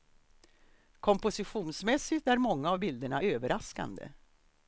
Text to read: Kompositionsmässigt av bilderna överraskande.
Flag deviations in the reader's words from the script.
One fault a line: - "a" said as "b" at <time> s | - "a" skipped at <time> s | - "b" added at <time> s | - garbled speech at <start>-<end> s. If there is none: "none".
- "är många" added at 2.3 s